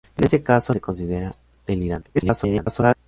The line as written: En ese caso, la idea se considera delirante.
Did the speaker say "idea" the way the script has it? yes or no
no